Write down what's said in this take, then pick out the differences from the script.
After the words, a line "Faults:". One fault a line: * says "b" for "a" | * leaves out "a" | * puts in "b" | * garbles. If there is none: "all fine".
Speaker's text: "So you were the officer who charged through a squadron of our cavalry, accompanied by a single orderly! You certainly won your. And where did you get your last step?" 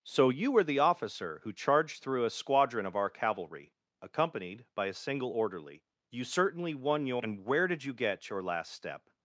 "So you were the officer who charged through a squadron of our cavalry, accompanied by a single orderly! You certainly won your. And where did you get your last step?"
Faults:
all fine